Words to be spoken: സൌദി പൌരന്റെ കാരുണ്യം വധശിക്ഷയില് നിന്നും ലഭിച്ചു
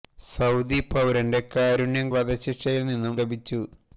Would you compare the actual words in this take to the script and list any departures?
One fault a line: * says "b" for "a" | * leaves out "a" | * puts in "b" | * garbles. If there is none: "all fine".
all fine